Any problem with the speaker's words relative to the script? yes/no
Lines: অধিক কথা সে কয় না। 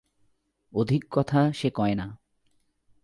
no